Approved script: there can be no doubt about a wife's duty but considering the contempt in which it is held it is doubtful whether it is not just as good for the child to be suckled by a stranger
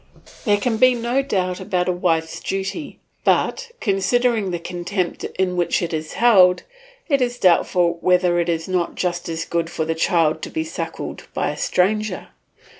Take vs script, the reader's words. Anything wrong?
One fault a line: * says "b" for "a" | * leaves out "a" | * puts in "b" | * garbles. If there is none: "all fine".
all fine